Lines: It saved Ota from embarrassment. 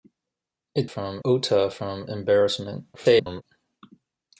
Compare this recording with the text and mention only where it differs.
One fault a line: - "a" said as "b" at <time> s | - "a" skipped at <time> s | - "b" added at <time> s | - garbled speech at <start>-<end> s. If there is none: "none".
- "saved" said as "from" at 0.8 s
- garbled speech at 2.9-3.4 s